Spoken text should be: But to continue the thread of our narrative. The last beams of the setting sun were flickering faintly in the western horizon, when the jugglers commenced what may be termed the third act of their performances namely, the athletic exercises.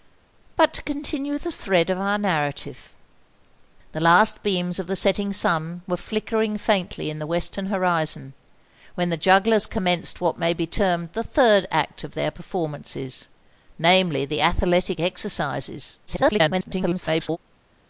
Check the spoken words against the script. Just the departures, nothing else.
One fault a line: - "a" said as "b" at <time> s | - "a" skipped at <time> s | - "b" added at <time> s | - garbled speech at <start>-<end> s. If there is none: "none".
- garbled speech at 16.1-17.4 s